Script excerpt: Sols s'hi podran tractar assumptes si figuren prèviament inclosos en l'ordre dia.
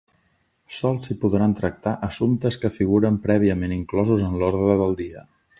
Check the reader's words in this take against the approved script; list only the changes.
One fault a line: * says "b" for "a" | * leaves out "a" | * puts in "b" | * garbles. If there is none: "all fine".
* says "que" for "si"
* puts in "del"